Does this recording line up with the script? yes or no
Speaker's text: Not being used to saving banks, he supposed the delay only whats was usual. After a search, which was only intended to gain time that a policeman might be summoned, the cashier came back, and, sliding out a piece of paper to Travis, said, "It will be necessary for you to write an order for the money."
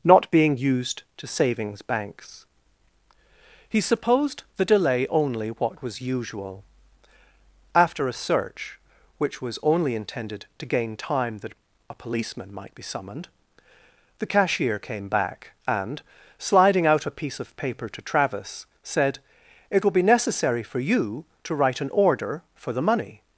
no